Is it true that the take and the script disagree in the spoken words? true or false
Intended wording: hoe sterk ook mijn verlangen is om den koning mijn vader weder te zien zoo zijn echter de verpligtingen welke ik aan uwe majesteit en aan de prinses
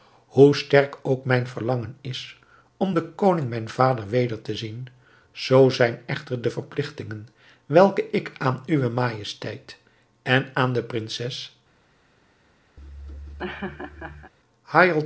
false